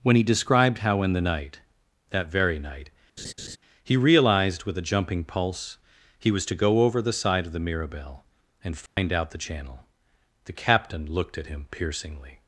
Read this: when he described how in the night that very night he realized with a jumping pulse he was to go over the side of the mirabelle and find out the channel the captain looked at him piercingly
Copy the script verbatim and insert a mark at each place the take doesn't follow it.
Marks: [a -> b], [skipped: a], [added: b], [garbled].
when he described how in the night that very night he realized with a jumping pulse he was to go over the side of the mirabelle and find out the channel the captain looked at him piercingly